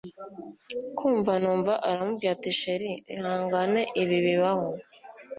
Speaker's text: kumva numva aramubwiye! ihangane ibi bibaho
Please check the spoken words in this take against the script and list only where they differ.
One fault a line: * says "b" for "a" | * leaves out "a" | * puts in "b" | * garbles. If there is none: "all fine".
* puts in "ati chr"